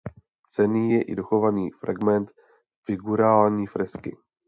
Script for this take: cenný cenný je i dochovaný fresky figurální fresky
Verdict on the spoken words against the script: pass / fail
fail